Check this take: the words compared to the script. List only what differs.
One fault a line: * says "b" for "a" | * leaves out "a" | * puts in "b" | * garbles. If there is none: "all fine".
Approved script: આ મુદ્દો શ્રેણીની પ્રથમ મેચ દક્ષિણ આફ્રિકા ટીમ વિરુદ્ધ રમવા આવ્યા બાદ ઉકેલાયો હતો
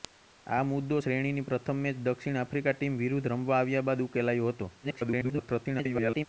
* garbles